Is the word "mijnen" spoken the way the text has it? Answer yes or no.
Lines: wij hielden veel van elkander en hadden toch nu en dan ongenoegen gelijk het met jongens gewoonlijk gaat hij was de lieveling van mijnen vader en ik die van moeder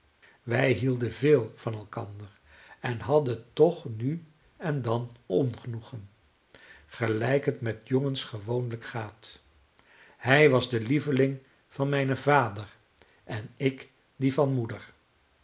yes